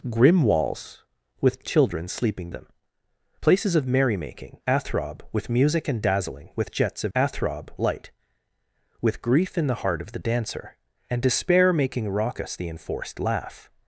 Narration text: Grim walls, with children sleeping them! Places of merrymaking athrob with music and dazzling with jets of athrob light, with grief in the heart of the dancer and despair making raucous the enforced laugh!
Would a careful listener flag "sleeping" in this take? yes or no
no